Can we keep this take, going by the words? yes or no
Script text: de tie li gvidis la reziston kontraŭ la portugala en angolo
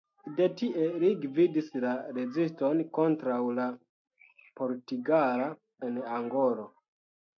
yes